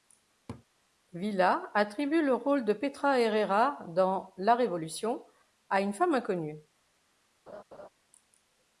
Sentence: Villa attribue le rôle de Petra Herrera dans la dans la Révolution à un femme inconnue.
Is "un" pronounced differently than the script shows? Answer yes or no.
yes